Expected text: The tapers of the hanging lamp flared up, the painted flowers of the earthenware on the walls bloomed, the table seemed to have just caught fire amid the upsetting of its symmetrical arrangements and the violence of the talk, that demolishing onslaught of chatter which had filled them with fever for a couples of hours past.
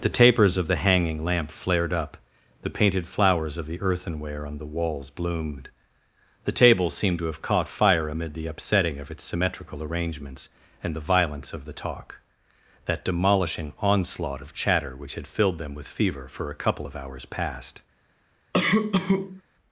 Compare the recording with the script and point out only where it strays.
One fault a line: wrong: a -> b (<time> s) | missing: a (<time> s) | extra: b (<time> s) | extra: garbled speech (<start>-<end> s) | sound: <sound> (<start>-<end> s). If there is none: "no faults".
missing: just (7.4 s)
wrong: couples -> couple (16.6 s)
sound: cough (18.5-19.4 s)